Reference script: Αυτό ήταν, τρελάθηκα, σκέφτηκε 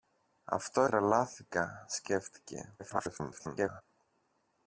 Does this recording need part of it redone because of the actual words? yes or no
yes